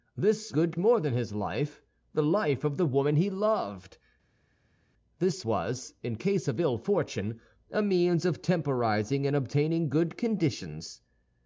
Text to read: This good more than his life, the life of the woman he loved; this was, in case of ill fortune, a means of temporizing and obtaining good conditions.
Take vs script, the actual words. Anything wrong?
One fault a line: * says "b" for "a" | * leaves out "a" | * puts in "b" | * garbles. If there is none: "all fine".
all fine